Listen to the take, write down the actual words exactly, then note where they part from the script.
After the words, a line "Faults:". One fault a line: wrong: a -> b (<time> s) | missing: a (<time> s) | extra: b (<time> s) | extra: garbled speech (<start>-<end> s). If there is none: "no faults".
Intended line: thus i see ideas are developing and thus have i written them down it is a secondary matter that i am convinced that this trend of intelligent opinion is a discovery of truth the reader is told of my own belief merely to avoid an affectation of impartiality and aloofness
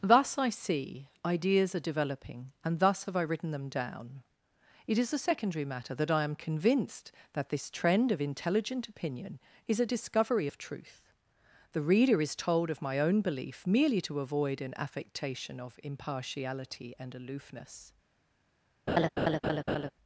thus i see ideas are developing and thus have i written them down it is a secondary matter that i am convinced that this trend of intelligent opinion is a discovery of truth the reader is told of my own belief merely to avoid an affectation of impartiality and aloofness
Faults:
no faults